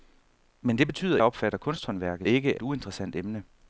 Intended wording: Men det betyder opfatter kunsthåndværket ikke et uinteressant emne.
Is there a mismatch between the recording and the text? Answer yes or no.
no